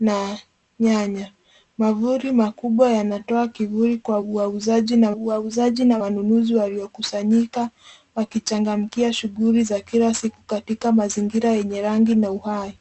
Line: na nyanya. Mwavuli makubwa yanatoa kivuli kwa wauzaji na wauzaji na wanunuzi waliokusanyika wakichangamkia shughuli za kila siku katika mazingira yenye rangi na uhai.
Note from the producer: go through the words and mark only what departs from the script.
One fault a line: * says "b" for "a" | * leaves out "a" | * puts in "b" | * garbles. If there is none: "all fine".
all fine